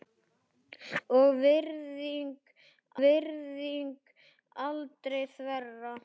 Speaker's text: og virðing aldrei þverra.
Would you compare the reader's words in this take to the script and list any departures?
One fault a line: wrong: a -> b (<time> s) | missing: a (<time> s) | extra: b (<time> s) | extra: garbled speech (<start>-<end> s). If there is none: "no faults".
extra: virðing (3.0 s)